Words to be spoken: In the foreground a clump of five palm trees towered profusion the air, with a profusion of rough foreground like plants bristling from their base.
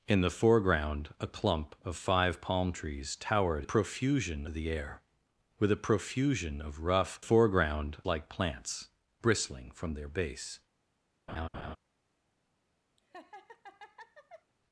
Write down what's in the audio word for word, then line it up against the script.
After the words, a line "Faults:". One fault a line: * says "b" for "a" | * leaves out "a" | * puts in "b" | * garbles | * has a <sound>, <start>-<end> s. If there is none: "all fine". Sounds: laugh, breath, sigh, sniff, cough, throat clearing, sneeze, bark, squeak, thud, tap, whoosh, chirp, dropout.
In the foreground a clump of five palm trees towered profusion the air, with a profusion of rough foreground like plants bristling from their base.
Faults:
* has a laugh, 11.3-11.8 s
* has a laugh, 13.0-14.5 s